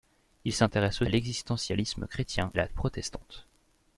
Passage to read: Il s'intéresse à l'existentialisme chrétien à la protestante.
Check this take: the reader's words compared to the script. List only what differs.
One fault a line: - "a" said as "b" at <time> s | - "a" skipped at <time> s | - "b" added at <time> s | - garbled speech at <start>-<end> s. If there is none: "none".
none